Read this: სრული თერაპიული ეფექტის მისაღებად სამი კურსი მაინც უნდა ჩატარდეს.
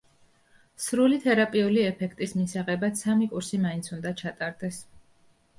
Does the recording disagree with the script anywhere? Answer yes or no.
no